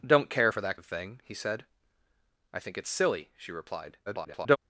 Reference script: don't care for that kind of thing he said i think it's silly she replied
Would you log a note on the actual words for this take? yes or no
yes